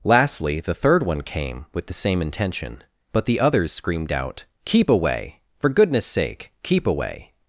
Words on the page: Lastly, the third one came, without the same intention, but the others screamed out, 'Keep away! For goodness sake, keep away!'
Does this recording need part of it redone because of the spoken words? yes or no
yes